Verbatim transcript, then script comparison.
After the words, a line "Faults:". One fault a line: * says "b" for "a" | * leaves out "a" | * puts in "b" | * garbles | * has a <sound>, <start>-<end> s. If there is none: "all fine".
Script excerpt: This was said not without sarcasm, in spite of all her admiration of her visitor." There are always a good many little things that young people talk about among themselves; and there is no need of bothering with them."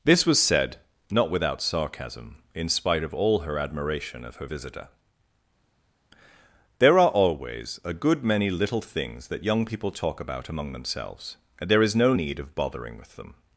This was said not without sarcasm, in spite of all her admiration of her visitor." There are always a good many little things that young people talk about among themselves; and there is no need of bothering with them."
Faults:
all fine